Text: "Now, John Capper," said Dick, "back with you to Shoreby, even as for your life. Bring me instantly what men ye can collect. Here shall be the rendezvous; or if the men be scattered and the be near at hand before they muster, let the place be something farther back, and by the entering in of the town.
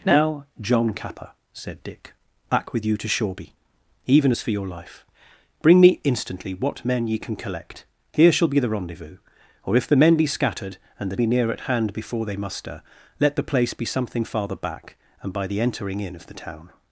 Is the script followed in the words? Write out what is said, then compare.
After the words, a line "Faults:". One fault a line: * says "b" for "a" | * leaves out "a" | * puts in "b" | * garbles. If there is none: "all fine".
"Now, John Capper," said Dick, "back with you to Shoreby, even as for your life. Bring me instantly what men ye can collect. Here shall be the rendezvous; or if the men be scattered and the be near at hand before they muster, let the place be something farther back, and by the entering in of the town.
Faults:
all fine